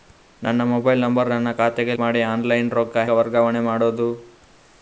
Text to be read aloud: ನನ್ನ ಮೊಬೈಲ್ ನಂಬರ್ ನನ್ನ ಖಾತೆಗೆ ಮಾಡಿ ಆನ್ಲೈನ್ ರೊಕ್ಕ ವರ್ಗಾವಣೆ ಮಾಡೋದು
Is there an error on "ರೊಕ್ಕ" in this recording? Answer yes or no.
no